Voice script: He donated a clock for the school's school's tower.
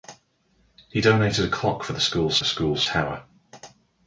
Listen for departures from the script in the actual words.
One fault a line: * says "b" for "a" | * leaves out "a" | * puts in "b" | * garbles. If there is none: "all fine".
all fine